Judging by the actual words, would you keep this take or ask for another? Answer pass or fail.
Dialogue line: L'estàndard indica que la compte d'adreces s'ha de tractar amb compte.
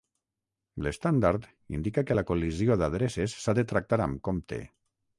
fail